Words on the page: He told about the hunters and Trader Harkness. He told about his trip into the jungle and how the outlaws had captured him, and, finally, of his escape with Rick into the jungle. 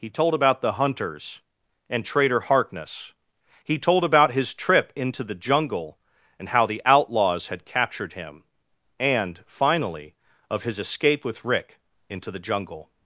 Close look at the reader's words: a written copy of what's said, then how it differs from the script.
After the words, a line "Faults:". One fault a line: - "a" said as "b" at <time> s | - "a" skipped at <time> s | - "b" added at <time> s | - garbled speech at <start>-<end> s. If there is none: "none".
He told about the hunters and Trader Harkness. He told about his trip into the jungle and how the outlaws had captured him, and, finally, of his escape with Rick into the jungle.
Faults:
none